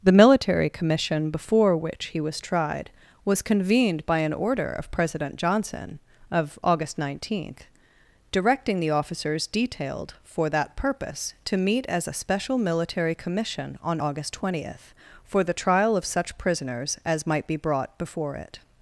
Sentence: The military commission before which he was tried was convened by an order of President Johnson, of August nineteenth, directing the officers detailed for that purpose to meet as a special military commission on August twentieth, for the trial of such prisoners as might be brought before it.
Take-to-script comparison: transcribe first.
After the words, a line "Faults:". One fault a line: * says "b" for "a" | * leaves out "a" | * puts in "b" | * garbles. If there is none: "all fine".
The military commission before which he was tried was convened by an order of President Johnson, of August nineteenth, directing the officers detailed for that purpose to meet as a special military commission on August twentieth, for the trial of such prisoners as might be brought before it.
Faults:
all fine